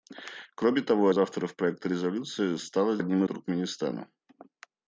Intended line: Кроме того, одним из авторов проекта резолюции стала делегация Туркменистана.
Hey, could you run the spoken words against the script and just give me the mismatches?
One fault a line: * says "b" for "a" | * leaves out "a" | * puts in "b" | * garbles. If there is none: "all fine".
* leaves out "одним"
* says "одним" for "делегация"